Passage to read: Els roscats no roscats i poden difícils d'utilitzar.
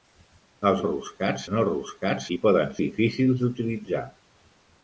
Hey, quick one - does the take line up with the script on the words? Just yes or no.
yes